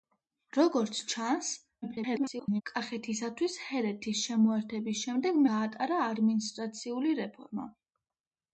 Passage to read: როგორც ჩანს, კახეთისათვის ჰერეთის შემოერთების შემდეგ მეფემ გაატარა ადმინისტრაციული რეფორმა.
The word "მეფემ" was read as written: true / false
false